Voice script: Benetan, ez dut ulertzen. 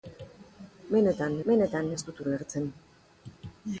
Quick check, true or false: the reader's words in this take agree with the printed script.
false